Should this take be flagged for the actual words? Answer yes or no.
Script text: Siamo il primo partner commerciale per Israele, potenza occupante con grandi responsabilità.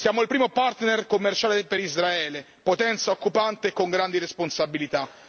no